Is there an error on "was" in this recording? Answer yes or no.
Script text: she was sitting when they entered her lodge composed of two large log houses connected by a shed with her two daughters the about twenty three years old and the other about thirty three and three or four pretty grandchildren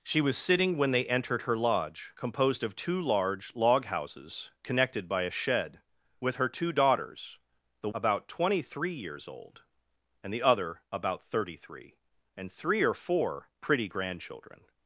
no